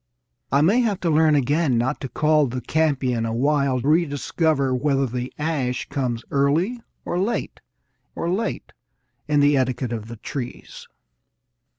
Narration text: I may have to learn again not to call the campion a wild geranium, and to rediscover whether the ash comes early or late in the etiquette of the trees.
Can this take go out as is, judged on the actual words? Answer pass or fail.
fail